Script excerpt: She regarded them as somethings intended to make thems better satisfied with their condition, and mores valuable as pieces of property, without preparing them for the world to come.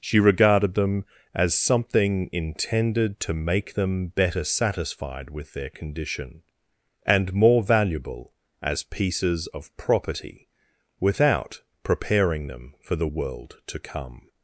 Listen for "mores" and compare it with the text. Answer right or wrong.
wrong